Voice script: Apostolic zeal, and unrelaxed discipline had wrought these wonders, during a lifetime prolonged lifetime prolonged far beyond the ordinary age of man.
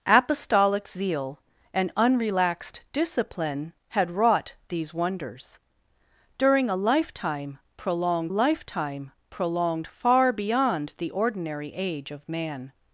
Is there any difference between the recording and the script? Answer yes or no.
no